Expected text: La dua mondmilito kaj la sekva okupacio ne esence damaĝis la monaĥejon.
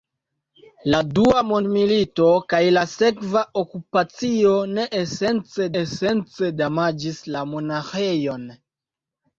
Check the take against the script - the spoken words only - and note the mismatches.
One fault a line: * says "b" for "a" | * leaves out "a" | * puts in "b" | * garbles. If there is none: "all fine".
* puts in "esence"